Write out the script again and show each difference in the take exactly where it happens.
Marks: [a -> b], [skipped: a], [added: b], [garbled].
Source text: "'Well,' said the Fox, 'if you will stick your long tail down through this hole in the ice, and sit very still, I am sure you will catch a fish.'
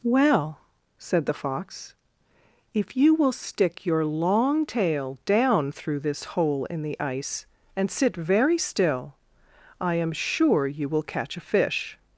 "'Well,' said the Fox, 'if you will stick your long tail down through this hole in the ice, and sit very still, I am sure you will catch a fish.'